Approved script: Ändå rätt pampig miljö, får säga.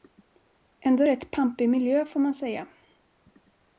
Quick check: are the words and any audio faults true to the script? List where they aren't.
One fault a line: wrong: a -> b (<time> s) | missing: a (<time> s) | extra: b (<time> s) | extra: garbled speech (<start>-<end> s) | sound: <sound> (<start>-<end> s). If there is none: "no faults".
extra: man (2.2 s)